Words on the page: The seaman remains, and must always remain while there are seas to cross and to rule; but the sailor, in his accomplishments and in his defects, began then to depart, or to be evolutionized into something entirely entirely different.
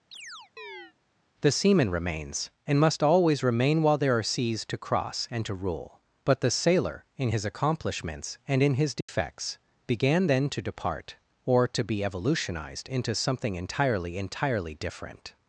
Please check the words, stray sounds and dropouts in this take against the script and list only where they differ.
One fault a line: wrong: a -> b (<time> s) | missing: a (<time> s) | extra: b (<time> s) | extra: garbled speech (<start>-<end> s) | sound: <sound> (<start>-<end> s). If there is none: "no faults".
sound: chirp (0.1-0.9 s)
sound: dropout (9.0-9.1 s)